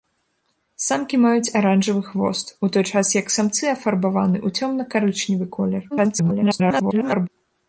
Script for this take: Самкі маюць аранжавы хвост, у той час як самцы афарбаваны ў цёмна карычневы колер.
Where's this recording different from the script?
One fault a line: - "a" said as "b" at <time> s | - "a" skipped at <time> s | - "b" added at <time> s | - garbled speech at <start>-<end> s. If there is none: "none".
- garbled speech at 5.9-7.3 s